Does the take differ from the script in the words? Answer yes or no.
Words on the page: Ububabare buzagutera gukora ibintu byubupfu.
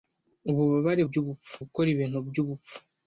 yes